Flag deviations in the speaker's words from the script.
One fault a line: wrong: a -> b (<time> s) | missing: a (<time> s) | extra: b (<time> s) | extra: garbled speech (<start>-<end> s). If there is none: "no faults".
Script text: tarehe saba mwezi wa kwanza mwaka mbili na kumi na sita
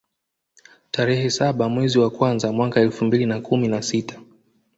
extra: elfu (2.8 s)